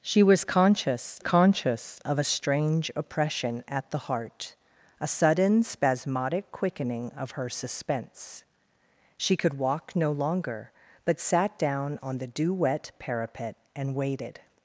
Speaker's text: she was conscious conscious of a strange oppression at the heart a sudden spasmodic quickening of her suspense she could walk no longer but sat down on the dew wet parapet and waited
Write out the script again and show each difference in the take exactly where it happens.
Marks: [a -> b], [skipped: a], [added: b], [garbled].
she was conscious conscious of a strange oppression at the heart a sudden spasmodic quickening of her suspense she could walk no longer but sat down on the dew wet parapet and waited